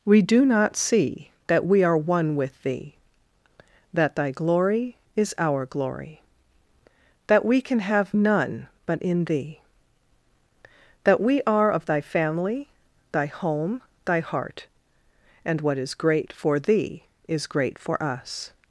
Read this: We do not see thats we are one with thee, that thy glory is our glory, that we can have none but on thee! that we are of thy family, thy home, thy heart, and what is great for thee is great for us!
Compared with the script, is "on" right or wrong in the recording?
wrong